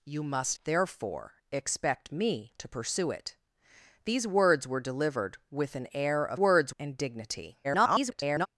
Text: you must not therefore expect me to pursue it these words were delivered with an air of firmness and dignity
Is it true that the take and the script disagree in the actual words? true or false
true